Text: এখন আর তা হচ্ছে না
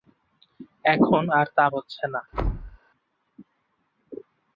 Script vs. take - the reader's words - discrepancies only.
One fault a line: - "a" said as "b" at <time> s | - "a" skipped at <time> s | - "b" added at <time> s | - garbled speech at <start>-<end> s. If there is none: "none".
none